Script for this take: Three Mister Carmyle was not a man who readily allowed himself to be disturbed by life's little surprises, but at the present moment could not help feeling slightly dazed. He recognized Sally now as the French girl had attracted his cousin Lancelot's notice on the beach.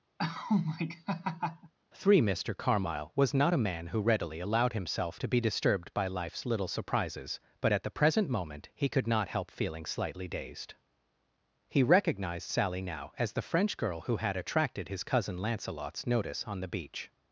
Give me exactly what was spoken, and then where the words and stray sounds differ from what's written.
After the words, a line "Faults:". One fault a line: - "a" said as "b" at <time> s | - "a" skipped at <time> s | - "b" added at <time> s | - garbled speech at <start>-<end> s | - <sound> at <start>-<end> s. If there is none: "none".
Three Mister Carmyle was not a man who readily allowed himself to be disturbed by life's little surprises, but at the present moment he could not help feeling slightly dazed. He recognized Sally now as the French girl who had attracted his cousin Lancelot's notice on the beach.
Faults:
- laugh at 0.2-1.7 s
- "he" added at 8.7 s
- "who" added at 14.0 s